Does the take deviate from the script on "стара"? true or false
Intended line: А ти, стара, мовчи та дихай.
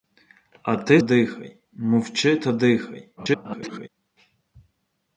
true